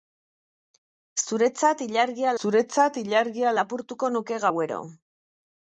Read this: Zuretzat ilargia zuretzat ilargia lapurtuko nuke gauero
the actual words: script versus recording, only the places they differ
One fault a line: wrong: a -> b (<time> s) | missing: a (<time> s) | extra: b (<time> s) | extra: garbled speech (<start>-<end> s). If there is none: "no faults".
no faults